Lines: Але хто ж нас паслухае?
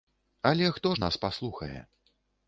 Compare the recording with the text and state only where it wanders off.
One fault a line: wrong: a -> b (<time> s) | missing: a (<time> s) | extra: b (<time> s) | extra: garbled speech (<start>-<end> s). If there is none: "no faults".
no faults